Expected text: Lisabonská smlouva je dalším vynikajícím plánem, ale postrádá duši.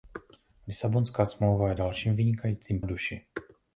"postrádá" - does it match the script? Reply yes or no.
no